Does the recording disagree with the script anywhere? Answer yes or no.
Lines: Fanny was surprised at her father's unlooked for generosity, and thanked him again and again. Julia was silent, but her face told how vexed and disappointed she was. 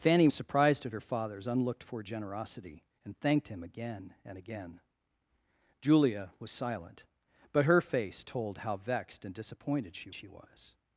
yes